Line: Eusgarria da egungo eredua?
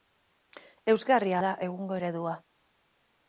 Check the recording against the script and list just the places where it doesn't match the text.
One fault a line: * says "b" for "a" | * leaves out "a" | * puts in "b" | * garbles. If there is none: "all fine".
all fine